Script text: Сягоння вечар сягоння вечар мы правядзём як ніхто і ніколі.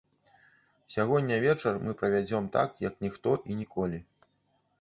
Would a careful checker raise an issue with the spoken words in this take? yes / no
yes